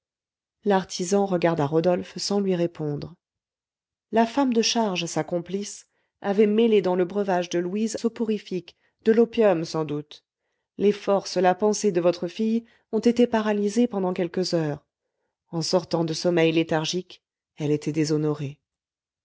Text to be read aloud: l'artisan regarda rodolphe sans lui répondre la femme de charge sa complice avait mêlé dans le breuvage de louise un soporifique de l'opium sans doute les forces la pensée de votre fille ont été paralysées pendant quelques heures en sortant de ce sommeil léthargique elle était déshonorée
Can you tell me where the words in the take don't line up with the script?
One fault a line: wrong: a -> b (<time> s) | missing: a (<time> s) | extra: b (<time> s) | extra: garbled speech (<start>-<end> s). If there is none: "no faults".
missing: un (8.0 s)
missing: ce (16.1 s)